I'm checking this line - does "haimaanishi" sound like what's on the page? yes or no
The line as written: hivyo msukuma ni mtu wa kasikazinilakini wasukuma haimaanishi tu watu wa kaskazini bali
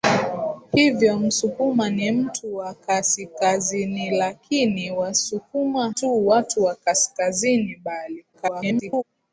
no